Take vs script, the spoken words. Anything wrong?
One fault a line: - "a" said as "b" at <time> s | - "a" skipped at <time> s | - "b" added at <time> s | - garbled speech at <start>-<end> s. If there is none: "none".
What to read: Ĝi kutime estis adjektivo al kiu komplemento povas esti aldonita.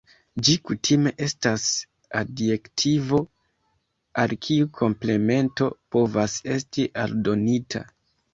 - "estis" said as "estas" at 1.2 s